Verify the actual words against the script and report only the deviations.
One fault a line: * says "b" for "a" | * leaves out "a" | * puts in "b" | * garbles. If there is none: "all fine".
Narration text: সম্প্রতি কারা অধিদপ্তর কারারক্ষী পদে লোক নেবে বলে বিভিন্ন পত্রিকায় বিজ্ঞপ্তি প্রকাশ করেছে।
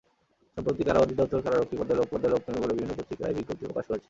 * puts in "পদে লোক"